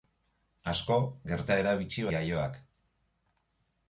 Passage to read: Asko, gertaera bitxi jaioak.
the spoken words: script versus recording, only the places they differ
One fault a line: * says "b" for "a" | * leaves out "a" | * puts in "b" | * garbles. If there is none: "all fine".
all fine